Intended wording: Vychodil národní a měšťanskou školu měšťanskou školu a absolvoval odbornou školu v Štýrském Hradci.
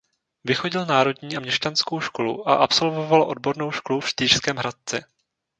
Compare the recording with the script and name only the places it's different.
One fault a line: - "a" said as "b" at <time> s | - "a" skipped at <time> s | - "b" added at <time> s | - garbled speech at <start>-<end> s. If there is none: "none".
- "měšťanskou školu" skipped at 2.5 s